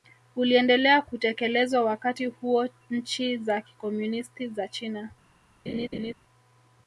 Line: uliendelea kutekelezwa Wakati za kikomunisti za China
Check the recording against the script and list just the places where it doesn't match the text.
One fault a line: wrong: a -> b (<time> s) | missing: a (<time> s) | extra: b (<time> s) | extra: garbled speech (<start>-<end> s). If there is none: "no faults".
extra: huo nchi (2.2 s)